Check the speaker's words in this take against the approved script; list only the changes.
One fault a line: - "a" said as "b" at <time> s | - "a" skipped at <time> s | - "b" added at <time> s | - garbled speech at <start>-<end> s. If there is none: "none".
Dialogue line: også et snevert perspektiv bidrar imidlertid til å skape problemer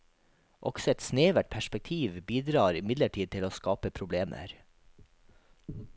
none